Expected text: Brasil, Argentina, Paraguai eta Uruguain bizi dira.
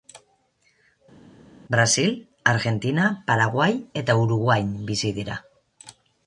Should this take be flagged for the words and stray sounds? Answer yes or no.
no